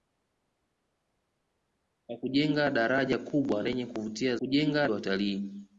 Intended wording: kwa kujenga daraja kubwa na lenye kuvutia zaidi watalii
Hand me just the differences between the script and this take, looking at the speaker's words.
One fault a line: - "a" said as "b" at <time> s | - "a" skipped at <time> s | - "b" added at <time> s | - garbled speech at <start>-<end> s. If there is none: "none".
- "na" skipped at 3.6 s
- "zaidi" said as "kujenga" at 4.4 s